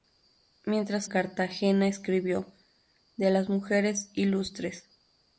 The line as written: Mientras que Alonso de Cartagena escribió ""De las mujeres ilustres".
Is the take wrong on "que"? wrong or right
wrong